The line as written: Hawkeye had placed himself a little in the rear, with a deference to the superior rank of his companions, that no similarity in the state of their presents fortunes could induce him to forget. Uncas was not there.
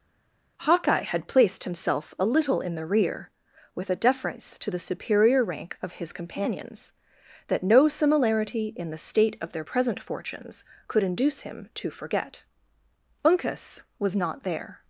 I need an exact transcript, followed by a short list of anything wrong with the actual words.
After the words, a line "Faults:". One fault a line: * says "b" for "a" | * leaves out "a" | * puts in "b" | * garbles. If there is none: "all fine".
Hawkeye had placed himself a little in the rear, with a deference to the superior rank of his companions, that no similarity in the state of their present fortunes could induce him to forget. Uncas was not there.
Faults:
* says "present" for "presents"